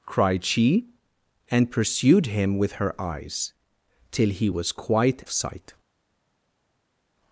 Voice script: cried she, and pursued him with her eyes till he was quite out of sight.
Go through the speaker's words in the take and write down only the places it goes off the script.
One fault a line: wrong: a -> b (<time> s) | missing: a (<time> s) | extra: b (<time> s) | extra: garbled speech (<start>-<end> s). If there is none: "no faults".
missing: out (5.2 s)